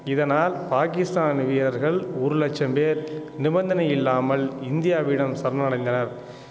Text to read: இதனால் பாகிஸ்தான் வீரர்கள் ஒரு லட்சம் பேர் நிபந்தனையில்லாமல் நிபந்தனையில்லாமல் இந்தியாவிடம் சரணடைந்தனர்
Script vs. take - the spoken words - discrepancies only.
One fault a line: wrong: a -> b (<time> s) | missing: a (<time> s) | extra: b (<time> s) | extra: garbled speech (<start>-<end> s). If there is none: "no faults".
missing: நிபந்தனையில்லாமல் (4.5 s)